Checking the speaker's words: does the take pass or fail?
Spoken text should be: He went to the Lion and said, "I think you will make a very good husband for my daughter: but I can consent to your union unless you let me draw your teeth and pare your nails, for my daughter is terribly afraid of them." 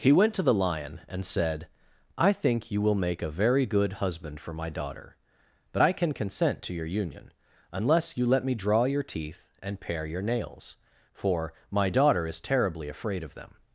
pass